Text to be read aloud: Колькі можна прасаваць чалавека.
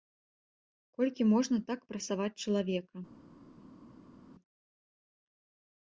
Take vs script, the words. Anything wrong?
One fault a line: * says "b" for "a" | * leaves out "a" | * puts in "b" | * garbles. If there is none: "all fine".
* puts in "так"